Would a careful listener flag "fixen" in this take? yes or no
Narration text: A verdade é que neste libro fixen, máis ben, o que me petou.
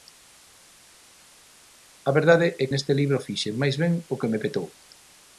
no